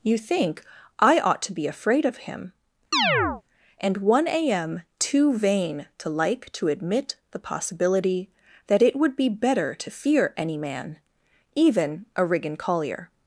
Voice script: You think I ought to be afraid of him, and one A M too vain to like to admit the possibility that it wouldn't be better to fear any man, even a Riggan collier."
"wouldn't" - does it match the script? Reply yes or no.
no